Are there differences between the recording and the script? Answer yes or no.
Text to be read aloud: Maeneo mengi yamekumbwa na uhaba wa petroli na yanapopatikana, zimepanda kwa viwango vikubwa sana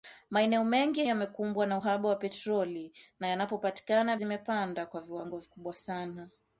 no